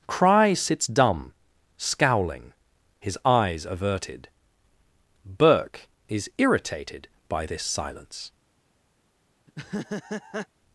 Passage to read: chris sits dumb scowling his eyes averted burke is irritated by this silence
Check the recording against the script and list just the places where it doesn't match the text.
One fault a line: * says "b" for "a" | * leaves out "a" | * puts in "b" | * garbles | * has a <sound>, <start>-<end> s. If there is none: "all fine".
* says "cry" for "chris"
* has a laugh, 9.5-10.5 s